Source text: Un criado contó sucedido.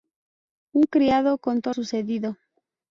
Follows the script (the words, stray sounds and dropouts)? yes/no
yes